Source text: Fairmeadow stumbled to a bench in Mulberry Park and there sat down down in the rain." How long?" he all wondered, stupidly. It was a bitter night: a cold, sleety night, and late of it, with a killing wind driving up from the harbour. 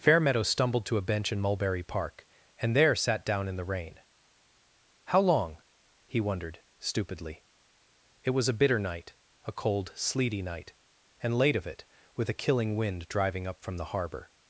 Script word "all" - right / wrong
wrong